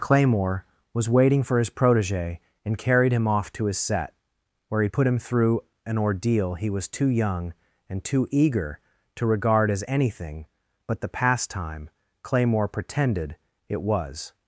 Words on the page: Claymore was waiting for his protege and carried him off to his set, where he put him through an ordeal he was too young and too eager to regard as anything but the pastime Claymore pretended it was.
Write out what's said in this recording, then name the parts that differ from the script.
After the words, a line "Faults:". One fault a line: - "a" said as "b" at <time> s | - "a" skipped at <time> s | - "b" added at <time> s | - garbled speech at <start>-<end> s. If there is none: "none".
Claymore was waiting for his protege and carried him off to his set, where he put him through an ordeal he was too young and too eager to regard as anything but the pastime Claymore pretended it was.
Faults:
none